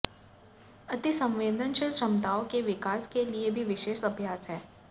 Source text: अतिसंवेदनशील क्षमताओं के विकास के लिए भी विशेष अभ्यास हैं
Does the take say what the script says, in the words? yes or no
yes